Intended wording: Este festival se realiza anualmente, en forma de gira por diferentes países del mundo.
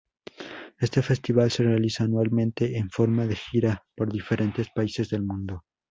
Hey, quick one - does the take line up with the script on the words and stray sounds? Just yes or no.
yes